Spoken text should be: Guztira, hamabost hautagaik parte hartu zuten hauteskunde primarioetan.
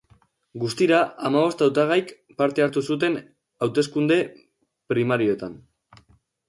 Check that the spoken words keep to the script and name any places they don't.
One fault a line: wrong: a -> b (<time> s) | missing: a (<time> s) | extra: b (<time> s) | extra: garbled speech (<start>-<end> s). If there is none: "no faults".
no faults